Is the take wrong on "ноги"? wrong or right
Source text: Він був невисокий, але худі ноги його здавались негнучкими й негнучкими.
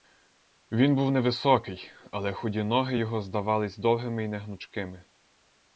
right